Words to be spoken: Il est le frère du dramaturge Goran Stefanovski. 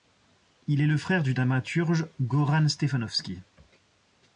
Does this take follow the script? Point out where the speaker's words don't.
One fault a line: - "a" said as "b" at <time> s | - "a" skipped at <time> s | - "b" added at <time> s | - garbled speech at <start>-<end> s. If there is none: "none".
none